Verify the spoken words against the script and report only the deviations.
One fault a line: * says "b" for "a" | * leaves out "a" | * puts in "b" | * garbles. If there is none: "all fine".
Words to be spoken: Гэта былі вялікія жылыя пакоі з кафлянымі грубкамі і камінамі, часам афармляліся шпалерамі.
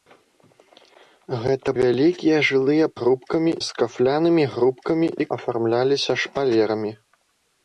* leaves out "былі"
* says "грубкамі" for "пакоі"
* leaves out "камінамі часам"